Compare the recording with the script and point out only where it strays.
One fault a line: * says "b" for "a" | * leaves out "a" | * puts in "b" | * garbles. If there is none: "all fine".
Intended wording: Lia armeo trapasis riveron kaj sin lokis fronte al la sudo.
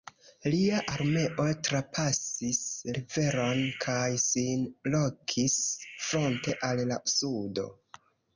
all fine